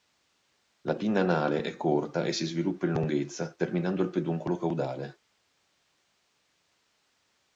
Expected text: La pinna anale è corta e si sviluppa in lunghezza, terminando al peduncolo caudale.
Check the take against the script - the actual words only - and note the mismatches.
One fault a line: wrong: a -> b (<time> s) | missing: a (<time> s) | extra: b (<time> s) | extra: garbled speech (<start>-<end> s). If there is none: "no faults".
no faults